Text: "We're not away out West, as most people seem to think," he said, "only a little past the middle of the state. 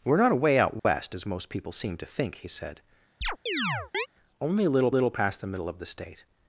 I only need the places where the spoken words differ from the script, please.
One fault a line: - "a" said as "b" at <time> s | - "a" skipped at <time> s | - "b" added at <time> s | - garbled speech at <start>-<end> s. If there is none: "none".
- "little" added at 4.9 s